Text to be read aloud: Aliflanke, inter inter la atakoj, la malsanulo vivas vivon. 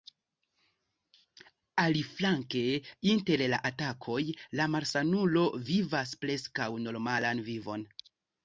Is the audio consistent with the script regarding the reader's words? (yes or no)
no